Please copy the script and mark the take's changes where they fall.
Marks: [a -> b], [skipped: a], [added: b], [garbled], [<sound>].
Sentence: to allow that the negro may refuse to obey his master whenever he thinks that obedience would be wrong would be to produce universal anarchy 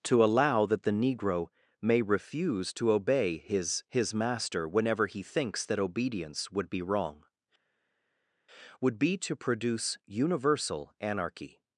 to allow that the negro may refuse to obey his [added: his] master whenever he thinks that obedience would be wrong would be to produce universal anarchy